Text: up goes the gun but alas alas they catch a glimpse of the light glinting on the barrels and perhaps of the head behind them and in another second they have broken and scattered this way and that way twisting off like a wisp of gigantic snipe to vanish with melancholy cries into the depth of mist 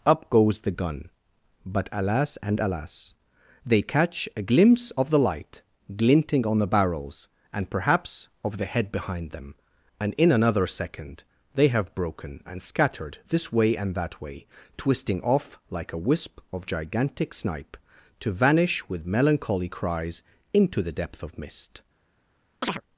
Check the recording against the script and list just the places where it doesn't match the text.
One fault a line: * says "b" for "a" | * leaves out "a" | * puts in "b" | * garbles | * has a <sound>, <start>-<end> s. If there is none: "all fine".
* puts in "and"
* has a chirp, 22.6-22.8 s